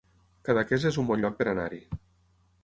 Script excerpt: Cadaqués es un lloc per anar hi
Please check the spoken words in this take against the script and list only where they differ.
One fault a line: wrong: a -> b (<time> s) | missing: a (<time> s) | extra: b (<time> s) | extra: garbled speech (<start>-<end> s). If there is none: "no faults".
extra: bon (1.1 s)